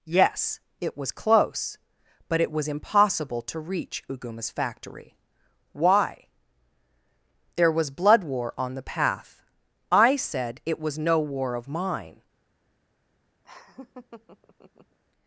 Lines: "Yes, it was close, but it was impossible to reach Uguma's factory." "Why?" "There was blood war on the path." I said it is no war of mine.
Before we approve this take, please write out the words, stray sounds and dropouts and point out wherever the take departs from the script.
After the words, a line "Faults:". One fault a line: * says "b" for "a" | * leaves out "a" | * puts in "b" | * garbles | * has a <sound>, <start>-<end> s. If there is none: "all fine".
"Yes, it was close, but it was impossible to reach Uguma's factory." "Why?" "There was blood war on the path." I said it was no war of mine.
Faults:
* says "was" for "is"
* has a laugh, 13.4-15.0 s